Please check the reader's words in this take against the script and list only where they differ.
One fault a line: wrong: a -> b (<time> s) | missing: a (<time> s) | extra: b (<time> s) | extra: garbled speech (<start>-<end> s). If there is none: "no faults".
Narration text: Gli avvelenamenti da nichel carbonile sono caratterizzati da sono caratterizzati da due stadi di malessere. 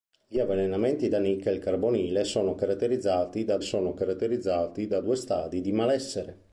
no faults